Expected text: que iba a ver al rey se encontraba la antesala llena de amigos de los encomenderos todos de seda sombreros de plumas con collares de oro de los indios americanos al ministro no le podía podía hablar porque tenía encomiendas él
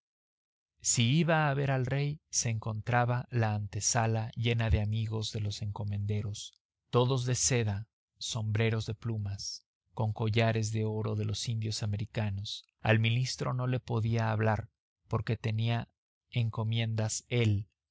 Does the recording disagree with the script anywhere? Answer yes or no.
yes